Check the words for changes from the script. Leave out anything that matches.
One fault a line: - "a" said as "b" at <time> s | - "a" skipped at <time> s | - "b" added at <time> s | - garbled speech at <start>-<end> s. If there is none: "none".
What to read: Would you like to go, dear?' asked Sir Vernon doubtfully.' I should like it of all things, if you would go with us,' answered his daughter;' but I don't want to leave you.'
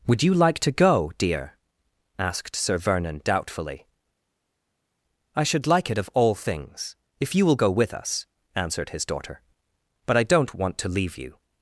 - "would" said as "will" at 7.5 s